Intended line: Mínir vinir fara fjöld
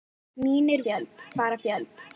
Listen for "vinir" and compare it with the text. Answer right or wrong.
wrong